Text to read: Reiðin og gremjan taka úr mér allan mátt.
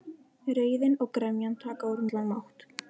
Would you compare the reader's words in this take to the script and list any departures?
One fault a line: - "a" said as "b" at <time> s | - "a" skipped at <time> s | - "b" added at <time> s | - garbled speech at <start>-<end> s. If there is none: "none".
- "mér" skipped at 2.0 s